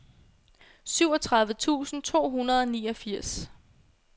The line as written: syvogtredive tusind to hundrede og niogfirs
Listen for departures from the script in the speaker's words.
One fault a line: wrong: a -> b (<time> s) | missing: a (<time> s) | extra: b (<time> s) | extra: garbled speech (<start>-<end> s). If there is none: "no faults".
no faults